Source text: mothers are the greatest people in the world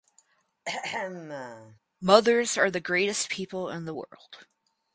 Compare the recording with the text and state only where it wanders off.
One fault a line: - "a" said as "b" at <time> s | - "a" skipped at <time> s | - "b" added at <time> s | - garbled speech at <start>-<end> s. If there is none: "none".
none